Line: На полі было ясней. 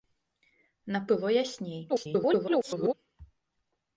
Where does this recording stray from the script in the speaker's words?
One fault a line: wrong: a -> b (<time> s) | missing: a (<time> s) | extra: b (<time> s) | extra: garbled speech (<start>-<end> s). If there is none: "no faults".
missing: полі (1.0 s)
extra: garbled speech (1.9-2.9 s)